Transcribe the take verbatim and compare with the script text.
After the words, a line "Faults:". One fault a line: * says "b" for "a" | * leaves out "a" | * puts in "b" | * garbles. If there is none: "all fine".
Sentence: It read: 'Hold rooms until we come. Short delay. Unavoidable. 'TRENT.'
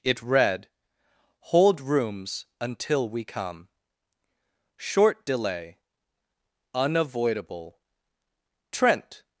It read: 'Hold rooms until we come. Short delay. Unavoidable. 'TRENT.'
Faults:
all fine